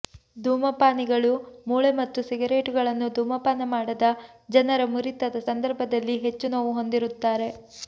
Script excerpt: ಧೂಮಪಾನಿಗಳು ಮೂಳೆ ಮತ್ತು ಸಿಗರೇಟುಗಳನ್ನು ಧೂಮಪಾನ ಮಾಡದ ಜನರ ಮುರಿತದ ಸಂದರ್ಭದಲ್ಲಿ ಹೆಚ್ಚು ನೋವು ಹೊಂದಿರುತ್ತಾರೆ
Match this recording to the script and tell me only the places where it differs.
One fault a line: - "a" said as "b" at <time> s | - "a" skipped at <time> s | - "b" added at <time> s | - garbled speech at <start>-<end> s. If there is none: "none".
none